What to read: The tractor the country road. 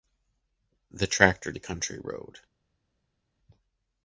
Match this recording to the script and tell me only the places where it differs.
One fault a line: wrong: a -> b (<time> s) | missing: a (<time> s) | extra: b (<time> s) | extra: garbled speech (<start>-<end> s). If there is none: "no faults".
no faults